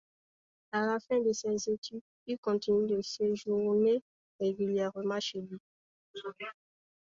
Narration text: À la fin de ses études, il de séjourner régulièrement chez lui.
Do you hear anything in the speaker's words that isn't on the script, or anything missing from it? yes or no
yes